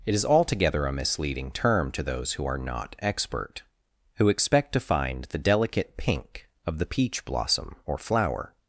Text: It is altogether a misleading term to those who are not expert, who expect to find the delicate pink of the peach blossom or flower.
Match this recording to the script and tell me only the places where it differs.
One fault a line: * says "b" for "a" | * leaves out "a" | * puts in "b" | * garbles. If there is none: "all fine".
all fine